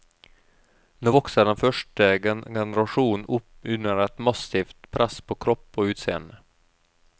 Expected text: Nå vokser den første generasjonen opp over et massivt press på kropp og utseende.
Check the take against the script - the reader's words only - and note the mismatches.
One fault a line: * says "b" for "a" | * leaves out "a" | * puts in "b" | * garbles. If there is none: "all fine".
* says "under" for "over"